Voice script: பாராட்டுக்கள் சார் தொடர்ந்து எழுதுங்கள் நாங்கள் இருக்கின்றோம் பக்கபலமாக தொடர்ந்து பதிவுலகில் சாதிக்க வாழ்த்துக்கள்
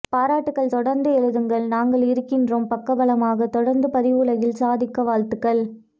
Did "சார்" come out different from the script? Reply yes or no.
yes